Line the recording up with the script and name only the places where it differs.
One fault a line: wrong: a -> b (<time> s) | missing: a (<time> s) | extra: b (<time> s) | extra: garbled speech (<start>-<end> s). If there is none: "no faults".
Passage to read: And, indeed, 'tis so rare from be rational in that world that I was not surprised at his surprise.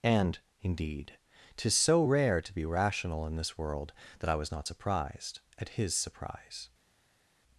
wrong: from -> to (2.4 s)
wrong: that -> this (3.3 s)